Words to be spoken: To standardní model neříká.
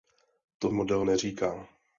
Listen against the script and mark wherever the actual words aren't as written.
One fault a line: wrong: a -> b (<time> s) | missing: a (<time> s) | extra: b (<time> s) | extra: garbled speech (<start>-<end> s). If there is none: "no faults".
missing: standardní (0.7 s)